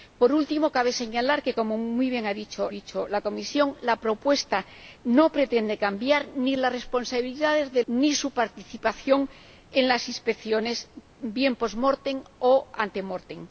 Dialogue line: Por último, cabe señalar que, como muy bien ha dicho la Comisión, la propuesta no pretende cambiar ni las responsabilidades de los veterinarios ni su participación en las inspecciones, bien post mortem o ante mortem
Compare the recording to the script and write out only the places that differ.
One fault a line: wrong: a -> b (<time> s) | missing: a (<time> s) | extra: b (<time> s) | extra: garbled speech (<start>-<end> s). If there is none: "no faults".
extra: dicho (2.7 s)
missing: los veterinarios (7.8 s)